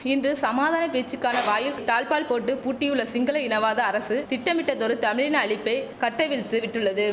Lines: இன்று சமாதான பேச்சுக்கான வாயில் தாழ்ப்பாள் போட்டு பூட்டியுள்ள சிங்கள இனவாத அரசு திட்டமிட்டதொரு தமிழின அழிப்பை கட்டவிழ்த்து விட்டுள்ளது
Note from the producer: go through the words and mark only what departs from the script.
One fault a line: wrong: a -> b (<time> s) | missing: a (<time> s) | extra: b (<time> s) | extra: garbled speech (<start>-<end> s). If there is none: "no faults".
no faults